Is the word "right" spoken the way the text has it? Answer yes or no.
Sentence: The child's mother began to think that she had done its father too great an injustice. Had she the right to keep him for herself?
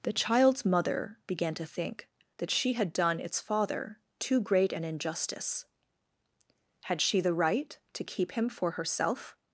yes